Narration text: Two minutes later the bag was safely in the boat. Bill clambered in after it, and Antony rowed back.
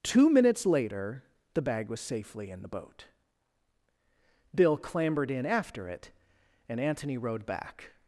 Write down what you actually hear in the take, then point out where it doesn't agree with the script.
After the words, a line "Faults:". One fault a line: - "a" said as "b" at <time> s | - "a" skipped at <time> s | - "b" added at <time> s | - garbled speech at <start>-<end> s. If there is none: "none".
Two minutes later the bag was safely in the boat. Bill clambered in after it, and Antony rowed back.
Faults:
none